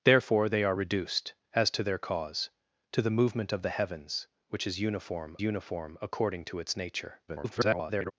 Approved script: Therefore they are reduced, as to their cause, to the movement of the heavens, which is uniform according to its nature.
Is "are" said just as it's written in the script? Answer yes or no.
yes